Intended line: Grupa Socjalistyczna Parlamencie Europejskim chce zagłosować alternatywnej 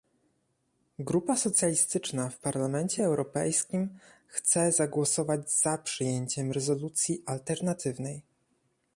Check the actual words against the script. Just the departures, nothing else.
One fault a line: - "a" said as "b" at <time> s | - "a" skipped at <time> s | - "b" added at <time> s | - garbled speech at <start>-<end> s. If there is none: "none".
- "w" added at 2.3 s
- "za przyjęciem rezolucji" added at 5.5 s